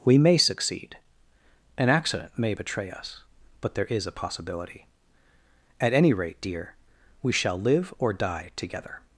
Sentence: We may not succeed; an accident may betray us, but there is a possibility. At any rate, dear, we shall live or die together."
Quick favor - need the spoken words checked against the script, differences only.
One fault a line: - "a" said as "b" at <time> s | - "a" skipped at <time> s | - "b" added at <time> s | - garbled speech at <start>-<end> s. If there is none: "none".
- "not" skipped at 0.4 s